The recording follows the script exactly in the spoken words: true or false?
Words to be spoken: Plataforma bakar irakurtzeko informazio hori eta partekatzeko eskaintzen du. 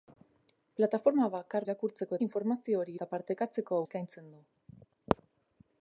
true